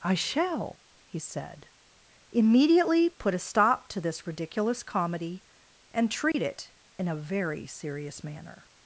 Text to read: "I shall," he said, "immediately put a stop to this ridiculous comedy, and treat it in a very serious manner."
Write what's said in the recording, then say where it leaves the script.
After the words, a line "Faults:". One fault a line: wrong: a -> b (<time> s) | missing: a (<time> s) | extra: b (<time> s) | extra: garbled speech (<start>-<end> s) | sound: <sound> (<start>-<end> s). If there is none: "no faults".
"I shall," he said, "immediately put a stop to this ridiculous comedy, and treat it in a very serious manner."
Faults:
sound: dropout (6.3-6.3 s)